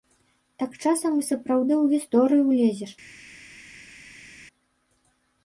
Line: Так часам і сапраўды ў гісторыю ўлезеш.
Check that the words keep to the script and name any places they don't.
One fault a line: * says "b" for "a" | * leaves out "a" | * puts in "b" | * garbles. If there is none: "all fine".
all fine